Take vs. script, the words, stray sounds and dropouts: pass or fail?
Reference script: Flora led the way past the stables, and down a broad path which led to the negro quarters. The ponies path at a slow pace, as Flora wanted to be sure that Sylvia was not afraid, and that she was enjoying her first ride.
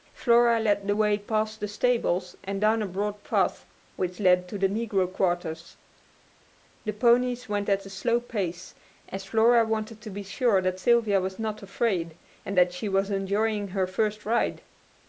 fail